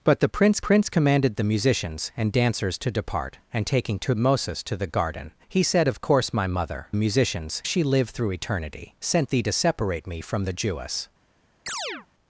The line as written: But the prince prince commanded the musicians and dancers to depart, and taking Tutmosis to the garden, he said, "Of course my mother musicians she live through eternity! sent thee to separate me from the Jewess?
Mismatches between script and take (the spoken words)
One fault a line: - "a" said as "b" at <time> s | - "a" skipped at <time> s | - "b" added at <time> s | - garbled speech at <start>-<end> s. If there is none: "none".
none